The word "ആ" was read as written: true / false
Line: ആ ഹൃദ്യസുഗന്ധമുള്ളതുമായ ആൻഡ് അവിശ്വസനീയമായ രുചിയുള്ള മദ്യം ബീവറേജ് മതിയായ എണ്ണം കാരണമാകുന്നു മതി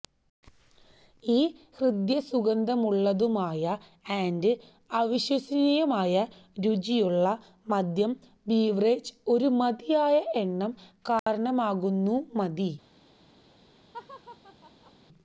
false